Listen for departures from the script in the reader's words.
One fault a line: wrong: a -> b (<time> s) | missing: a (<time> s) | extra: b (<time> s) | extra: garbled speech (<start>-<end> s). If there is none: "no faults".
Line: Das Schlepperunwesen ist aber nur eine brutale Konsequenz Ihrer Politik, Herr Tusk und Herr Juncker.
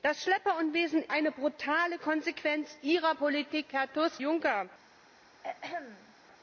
missing: ist aber nur (1.0 s)
missing: und Herr (4.2 s)